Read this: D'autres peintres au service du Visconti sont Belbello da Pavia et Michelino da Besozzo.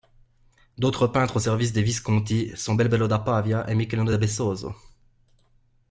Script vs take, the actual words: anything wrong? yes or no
yes